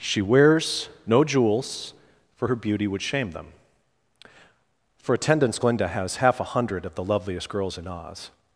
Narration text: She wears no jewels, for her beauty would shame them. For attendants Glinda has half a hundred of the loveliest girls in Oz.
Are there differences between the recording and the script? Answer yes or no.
no